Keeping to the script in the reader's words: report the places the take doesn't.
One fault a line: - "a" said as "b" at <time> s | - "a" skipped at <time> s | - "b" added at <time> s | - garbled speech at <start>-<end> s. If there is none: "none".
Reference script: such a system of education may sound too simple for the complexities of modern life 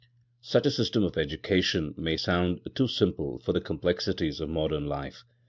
none